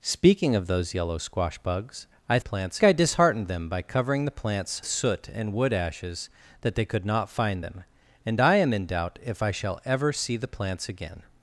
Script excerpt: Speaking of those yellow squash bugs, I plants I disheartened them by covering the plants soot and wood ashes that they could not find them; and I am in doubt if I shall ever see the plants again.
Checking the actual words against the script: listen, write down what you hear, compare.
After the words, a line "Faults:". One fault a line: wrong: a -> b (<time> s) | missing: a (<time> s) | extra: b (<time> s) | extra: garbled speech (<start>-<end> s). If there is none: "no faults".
Speaking of those yellow squash bugs, I plants I disheartened them by covering the plants soot and wood ashes that they could not find them; and I am in doubt if I shall ever see the plants again.
Faults:
no faults